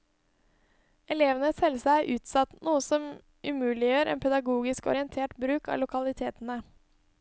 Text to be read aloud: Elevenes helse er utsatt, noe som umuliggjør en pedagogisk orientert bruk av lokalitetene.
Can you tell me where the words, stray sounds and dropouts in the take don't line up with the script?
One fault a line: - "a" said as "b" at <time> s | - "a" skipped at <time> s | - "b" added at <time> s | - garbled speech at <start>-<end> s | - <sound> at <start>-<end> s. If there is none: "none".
none